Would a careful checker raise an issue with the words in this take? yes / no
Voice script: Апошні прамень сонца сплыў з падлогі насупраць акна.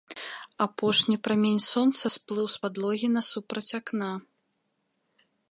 no